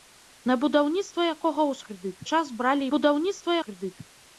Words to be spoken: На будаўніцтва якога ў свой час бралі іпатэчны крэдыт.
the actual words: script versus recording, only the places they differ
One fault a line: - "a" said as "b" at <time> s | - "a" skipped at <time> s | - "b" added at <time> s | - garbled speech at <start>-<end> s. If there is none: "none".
- "свой" said as "крэдыт" at 1.9 s
- "іпатэчны" said as "будаўніцтва" at 2.9 s